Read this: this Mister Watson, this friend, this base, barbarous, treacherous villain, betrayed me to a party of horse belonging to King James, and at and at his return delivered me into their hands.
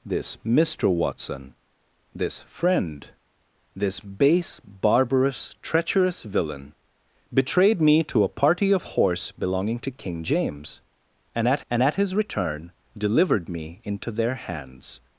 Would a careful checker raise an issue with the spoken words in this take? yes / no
no